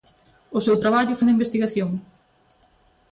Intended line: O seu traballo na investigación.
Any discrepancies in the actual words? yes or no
no